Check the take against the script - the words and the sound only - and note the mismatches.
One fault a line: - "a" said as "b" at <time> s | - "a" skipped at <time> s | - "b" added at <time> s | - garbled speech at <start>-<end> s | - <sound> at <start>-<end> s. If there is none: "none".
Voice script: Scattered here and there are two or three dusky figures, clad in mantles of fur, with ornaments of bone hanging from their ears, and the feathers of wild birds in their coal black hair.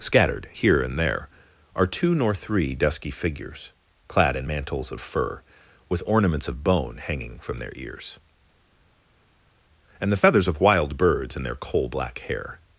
- "or" said as "nor" at 2.1 s